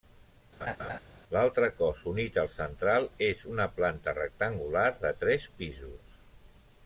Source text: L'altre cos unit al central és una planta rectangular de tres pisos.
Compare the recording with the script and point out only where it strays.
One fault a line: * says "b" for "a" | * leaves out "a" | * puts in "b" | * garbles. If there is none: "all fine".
all fine